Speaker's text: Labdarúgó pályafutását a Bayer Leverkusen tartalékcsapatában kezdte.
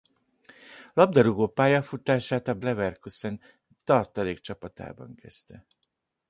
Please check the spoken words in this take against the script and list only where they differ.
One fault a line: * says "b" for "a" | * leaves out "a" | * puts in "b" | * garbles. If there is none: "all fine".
* leaves out "Bayer"